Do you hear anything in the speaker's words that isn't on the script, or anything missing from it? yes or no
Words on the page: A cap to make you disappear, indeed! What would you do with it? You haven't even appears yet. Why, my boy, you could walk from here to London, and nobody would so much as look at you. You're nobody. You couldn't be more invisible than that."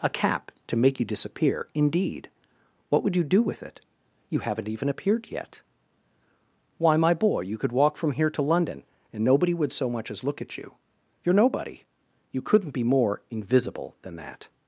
yes